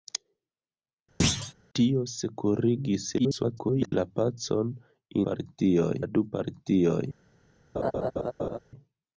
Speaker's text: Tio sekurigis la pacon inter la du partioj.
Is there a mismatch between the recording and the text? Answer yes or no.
yes